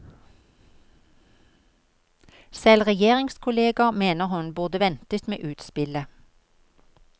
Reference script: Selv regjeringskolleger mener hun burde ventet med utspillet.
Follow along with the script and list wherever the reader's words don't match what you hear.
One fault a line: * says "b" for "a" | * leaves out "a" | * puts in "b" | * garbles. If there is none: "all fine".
all fine